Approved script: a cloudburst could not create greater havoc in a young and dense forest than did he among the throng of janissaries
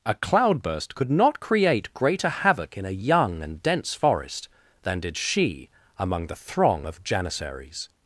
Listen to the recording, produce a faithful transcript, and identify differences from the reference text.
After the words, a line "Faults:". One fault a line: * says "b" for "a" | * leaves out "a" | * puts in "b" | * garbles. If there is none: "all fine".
a cloudburst could not create greater havoc in a young and dense forest than did she among the throng of janissaries
Faults:
* says "she" for "he"